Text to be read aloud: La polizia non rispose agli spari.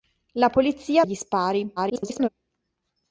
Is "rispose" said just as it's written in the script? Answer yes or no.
no